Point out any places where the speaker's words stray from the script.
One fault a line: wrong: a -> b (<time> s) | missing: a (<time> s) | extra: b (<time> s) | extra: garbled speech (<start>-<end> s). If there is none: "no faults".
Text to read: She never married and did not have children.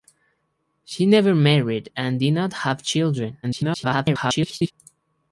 extra: garbled speech (3.4-4.7 s)